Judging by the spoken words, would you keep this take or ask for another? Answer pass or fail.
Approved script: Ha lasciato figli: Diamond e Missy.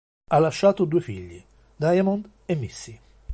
fail